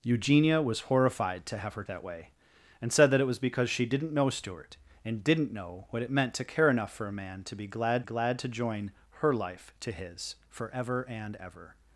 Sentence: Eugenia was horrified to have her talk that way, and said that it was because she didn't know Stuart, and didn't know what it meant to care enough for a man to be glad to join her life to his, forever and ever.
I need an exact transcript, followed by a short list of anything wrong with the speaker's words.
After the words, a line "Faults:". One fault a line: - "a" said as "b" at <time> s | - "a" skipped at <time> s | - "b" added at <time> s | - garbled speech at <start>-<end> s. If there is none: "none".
Eugenia was horrified to have her that way, and said that it was because she didn't know Stuart, and didn't know what it meant to care enough for a man to be glad glad to join her life to his, forever and ever.
Faults:
- "talk" skipped at 1.8 s
- "glad" added at 8.0 s